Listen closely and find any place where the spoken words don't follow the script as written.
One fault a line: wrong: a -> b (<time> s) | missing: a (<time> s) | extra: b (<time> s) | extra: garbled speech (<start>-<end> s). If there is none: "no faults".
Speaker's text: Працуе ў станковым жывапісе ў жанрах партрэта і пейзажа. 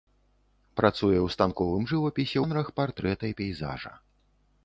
missing: ў (2.4 s)